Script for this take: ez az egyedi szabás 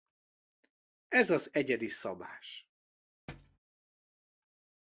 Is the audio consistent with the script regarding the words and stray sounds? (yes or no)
no